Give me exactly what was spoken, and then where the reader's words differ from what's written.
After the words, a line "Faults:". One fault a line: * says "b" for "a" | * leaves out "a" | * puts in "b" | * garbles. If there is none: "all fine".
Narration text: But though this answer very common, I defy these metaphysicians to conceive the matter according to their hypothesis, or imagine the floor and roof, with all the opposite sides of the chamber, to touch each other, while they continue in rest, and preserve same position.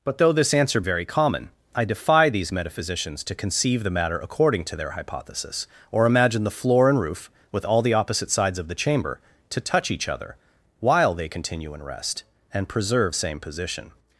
But though this answer very common, I defy these metaphysicians to conceive the matter according to their hypothesis, or imagine the floor and roof, with all the opposite sides of the chamber, to touch each other, while they continue in rest, and preserve same position.
Faults:
all fine